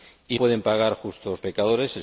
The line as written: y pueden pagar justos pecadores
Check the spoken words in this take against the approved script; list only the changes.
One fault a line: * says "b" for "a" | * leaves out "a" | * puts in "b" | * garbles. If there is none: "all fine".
all fine